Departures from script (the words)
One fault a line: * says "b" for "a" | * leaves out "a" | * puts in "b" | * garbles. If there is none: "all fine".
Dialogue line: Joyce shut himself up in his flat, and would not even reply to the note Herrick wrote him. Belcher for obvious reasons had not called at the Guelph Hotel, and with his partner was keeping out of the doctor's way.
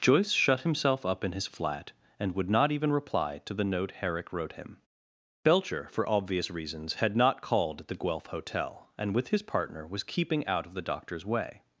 all fine